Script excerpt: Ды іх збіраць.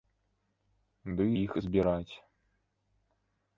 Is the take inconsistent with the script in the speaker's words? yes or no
no